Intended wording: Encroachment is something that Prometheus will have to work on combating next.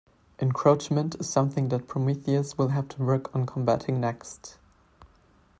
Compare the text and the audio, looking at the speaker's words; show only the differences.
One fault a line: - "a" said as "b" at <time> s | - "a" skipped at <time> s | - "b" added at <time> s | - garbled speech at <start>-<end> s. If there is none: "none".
none